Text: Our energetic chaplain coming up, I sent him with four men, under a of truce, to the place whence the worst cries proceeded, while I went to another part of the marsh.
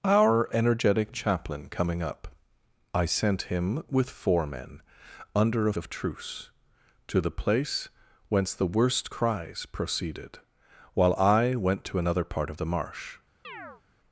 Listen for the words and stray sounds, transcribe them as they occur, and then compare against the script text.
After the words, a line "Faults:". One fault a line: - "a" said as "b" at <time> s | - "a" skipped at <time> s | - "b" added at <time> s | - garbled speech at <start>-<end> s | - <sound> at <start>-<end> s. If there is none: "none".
Our energetic chaplain coming up, I sent him with four men, under a of truce, to the place whence the worst cries proceeded, while I went to another part of the marsh.
Faults:
- chirp at 13.4-13.8 s